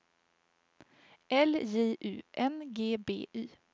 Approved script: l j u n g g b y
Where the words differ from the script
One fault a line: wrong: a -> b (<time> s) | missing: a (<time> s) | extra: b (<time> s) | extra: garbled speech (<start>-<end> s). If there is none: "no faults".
missing: g (3.0 s)